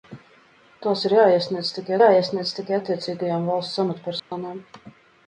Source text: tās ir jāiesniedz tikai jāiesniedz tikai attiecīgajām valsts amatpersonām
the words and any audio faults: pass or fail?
fail